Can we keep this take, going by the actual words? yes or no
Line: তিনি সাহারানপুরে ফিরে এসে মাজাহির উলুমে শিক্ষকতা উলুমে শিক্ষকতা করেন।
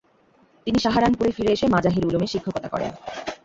no